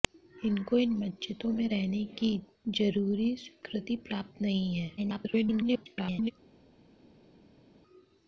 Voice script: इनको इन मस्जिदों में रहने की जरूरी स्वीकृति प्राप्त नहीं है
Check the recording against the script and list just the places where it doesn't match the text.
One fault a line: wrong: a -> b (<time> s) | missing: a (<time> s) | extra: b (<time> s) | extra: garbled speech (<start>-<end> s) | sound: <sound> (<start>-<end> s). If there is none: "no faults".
extra: garbled speech (5.0-6.3 s)